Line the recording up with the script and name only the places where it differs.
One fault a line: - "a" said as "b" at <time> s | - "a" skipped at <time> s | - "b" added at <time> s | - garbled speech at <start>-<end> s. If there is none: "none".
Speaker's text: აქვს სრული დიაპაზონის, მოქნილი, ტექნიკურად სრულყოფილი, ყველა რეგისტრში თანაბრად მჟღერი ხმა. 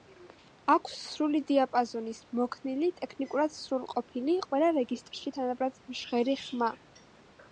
none